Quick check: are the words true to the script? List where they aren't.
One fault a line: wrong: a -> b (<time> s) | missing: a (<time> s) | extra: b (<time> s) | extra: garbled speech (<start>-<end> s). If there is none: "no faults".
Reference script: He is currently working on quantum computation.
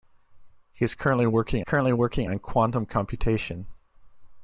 extra: currently working (1.6 s)